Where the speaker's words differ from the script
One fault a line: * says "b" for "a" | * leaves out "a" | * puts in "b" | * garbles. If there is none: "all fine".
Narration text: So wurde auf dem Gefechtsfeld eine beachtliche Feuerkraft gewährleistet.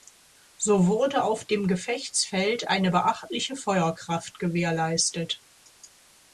all fine